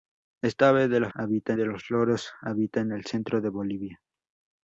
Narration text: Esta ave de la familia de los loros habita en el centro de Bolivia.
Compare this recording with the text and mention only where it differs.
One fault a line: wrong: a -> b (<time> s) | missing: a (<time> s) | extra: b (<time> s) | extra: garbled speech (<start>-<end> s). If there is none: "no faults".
wrong: familia -> habita (1.1 s)